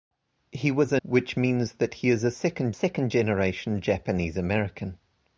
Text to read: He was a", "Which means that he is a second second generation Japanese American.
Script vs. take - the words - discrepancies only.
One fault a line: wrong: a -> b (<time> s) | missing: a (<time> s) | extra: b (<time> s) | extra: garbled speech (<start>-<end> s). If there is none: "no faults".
no faults